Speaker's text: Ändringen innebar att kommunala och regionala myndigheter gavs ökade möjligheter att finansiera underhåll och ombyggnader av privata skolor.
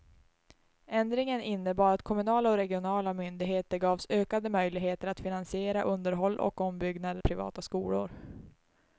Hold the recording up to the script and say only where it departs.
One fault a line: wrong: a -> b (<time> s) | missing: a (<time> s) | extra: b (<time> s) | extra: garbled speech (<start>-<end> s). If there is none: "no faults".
missing: av (7.2 s)